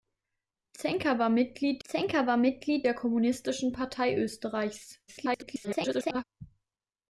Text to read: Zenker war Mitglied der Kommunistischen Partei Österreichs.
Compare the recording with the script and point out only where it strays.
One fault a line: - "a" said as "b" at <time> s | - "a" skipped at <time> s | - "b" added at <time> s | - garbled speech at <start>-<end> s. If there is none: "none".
- "zenker war Mitglied" added at 1.8 s
- garbled speech at 5.1-6.2 s